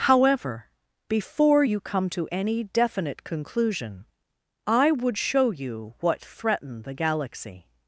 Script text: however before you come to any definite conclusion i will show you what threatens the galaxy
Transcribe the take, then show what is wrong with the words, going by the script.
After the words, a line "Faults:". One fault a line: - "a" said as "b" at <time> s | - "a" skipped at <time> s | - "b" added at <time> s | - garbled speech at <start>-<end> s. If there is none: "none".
however before you come to any definite conclusion i would show you what threaten the galaxy
Faults:
- "will" said as "would" at 4.9 s
- "threatens" said as "threaten" at 6.2 s